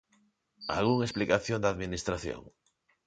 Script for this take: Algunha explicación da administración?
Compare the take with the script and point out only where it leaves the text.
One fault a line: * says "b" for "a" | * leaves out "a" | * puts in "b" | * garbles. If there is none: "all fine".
all fine